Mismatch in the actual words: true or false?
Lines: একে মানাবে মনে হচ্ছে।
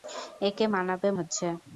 true